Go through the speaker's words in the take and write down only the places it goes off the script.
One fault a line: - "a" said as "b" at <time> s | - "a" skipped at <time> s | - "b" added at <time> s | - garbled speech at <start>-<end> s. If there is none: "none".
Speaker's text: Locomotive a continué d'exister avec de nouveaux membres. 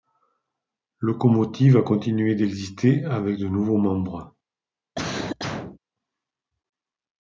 none